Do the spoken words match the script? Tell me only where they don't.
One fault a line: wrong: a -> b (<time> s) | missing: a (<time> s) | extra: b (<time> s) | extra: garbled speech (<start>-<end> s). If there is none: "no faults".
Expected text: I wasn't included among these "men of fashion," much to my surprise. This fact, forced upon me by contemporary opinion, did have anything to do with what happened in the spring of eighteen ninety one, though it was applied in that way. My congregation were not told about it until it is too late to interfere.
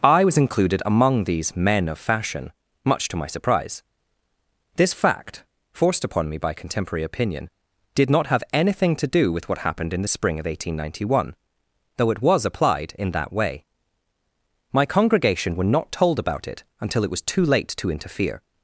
wrong: wasn't -> was (0.2 s)
extra: not (8.1 s)
wrong: is -> was (17.1 s)